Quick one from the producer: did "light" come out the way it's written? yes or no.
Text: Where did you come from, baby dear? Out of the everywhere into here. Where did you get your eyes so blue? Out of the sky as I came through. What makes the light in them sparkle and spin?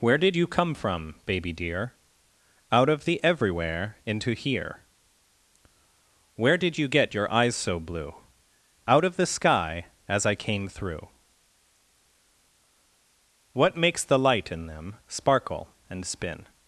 yes